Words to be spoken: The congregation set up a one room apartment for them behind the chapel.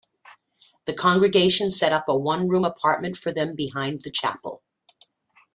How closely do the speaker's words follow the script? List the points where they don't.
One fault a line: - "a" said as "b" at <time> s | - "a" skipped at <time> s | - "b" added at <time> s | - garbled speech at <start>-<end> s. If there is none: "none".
none